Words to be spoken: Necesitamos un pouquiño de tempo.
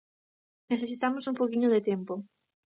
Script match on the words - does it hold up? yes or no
yes